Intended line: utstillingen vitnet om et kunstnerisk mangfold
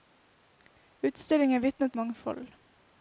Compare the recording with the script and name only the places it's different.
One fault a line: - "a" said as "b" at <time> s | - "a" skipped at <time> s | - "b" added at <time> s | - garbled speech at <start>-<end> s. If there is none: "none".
- "om et kunstnerisk" skipped at 2.0 s